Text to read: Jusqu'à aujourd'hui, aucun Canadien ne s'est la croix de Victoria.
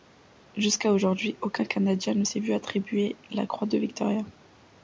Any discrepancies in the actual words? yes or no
yes